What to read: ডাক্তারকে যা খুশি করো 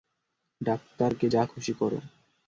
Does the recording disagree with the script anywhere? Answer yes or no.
no